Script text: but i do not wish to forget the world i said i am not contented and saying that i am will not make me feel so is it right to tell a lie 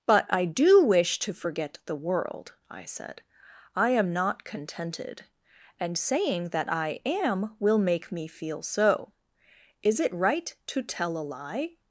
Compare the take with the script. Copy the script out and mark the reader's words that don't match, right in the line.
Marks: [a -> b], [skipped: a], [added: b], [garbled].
but i do [skipped: not] wish to forget the world i said i am not contented and saying that i am will [skipped: not] make me feel so is it right to tell a lie